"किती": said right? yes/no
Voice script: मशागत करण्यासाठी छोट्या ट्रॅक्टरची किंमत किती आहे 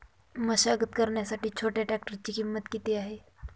yes